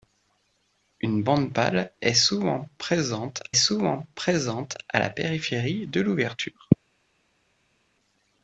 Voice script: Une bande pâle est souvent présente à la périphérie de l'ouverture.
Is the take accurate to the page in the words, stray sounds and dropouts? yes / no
no